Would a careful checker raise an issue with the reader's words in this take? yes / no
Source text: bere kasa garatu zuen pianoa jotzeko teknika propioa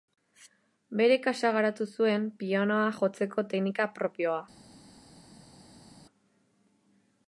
no